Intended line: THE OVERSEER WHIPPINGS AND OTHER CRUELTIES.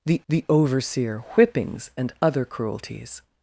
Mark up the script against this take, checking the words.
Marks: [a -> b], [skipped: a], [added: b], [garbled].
THE [added: the] OVERSEER WHIPPINGS AND OTHER CRUELTIES.